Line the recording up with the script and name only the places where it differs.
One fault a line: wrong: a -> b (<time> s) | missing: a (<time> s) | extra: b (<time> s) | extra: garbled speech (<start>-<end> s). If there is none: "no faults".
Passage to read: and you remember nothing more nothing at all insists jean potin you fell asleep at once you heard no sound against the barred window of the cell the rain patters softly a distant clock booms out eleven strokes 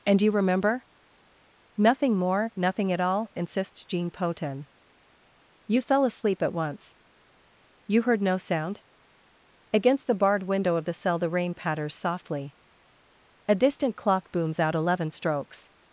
no faults